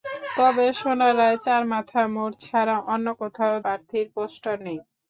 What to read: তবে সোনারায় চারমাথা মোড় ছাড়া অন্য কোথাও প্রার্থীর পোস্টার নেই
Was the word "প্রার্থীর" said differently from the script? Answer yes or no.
no